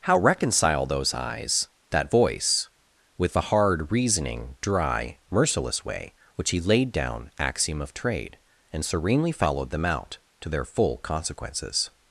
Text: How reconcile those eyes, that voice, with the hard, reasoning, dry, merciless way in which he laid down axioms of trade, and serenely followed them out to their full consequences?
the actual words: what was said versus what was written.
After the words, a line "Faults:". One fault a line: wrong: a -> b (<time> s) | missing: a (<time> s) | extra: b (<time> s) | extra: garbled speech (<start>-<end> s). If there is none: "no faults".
How reconcile those eyes, that voice, with the hard, reasoning, dry, merciless way which he laid down axiom of trade, and serenely followed them out to their full consequences?
Faults:
missing: in (6.1 s)
wrong: axioms -> axiom (7.4 s)